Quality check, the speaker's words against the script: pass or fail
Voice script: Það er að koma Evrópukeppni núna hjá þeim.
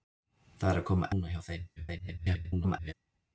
fail